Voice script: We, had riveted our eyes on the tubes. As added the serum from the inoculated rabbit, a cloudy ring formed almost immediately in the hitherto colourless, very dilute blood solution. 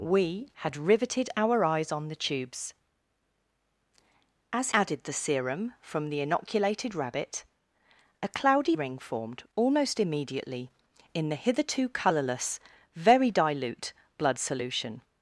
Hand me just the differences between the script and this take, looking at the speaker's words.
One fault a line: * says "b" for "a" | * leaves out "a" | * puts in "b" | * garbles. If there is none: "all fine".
all fine